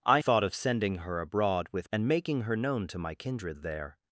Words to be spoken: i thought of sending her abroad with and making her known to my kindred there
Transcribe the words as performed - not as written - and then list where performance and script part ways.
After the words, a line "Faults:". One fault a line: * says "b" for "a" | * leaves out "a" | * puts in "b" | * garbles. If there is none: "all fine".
i thought of sending her abroad with and making her known to my kindred there
Faults:
all fine